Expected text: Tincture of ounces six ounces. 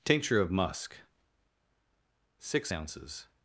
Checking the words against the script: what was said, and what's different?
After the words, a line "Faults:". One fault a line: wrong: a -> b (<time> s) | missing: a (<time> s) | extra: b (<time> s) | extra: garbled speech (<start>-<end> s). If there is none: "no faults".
Tincture of musk six ounces.
Faults:
wrong: ounces -> musk (0.5 s)